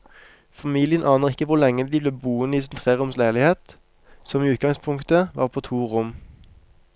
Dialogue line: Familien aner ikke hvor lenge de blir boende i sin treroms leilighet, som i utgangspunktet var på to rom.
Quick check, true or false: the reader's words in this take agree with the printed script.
true